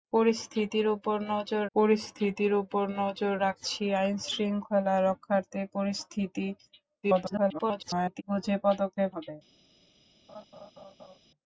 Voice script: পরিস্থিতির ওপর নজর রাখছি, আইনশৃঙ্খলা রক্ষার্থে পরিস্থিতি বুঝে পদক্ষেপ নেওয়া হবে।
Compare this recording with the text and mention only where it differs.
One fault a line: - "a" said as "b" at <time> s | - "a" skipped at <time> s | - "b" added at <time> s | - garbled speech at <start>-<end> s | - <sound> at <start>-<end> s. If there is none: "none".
- "পরিস্থিতির ওপর নজর" added at 1.8 s
- garbled speech at 7.0-8.2 s
- "নেওয়া" skipped at 9.1 s
- laugh at 10.3-11.2 s